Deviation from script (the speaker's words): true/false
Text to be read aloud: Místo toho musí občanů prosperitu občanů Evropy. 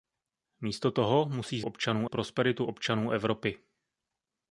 false